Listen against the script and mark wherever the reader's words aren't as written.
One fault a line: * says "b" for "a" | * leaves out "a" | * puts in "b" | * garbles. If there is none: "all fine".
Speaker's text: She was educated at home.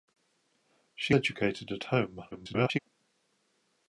* leaves out "was"
* garbles